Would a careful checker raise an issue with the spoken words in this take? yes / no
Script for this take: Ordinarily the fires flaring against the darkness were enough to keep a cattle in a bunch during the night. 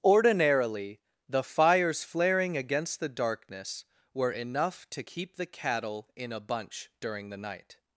yes